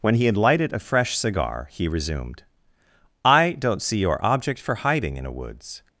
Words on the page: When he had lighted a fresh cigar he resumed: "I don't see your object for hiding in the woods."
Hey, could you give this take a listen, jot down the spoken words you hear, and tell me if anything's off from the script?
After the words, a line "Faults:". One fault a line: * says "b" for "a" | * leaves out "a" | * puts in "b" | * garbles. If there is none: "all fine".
When he had lighted a fresh cigar he resumed: "I don't see your object for hiding in a woods."
Faults:
* says "a" for "the"